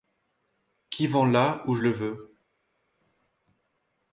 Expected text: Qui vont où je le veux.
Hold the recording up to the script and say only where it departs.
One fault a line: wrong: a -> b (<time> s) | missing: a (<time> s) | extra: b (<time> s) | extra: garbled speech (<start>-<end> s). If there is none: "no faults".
extra: là (1.2 s)